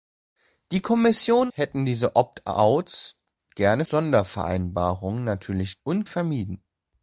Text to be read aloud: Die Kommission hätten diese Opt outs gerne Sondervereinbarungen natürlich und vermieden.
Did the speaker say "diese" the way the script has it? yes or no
yes